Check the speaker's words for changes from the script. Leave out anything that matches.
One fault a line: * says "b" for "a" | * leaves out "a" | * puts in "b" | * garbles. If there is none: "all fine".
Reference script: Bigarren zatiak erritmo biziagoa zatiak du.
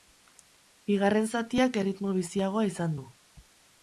* says "izan" for "zatiak"